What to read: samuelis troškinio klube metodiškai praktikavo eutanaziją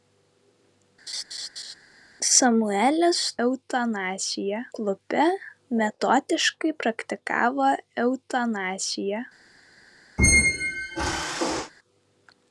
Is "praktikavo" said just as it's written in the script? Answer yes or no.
yes